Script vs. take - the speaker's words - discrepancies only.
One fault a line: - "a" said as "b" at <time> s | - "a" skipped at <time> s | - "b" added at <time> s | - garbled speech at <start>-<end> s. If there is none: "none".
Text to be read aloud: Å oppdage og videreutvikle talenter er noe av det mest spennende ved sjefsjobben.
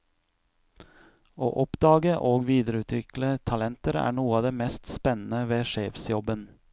none